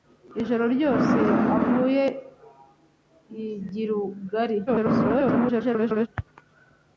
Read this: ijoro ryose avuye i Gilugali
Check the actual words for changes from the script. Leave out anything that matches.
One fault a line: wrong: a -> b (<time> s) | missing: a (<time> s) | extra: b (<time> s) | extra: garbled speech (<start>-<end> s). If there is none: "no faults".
extra: garbled speech (4.7-6.1 s)